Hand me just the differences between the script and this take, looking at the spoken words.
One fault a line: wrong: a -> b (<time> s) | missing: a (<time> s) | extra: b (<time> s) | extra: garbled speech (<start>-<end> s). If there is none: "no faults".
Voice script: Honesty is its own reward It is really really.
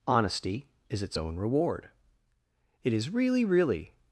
no faults